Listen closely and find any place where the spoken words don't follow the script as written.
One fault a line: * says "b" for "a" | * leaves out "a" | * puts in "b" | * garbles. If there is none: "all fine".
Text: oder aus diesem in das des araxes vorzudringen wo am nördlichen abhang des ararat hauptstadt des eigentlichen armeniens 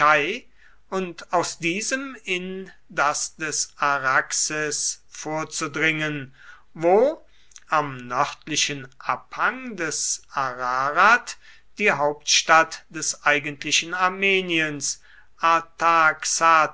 * says "und" for "oder"
* puts in "die"